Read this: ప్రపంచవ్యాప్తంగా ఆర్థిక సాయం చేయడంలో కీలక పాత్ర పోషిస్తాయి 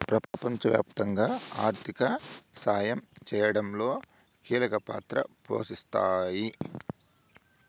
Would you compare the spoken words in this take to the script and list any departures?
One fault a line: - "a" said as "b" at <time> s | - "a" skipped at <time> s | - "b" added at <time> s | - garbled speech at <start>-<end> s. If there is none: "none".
none